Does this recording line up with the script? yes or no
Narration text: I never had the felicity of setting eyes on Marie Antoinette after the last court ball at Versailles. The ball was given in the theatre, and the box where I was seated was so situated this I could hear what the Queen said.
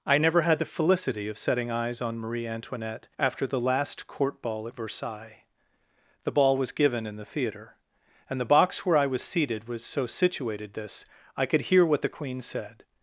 yes